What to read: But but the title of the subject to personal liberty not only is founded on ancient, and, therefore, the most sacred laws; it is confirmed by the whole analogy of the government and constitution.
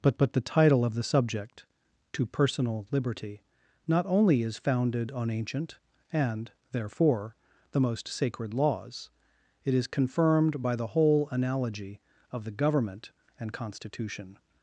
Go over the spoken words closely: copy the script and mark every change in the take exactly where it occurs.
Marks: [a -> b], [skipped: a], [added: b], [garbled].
But but the title of the subject to personal liberty not only is founded on ancient, and, therefore, the most sacred laws; it is confirmed by the whole analogy of the government and constitution.